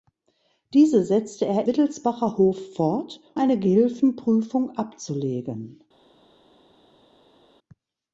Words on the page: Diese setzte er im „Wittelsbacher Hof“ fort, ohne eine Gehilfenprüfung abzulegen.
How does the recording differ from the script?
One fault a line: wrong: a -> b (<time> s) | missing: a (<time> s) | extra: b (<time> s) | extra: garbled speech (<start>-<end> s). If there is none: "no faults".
missing: im (1.7 s)
missing: ohne (3.2 s)